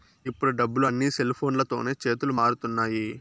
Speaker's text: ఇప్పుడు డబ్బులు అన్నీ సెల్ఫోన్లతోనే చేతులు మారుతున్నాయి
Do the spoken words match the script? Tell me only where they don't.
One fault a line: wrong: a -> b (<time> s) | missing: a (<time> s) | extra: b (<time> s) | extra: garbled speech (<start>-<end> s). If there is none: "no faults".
no faults